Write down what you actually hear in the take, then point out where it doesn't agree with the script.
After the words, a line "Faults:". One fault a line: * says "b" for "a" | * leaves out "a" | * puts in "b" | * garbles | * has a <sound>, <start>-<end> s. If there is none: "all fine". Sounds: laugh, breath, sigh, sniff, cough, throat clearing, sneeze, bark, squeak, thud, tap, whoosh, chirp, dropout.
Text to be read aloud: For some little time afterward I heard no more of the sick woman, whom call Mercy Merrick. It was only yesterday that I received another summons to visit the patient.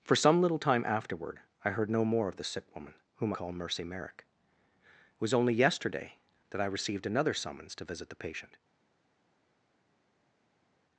For some little time afterward I heard no more of the sick woman, whom call Mercy Merrick. It was only yesterday that I received another summons to visit the patient.
Faults:
all fine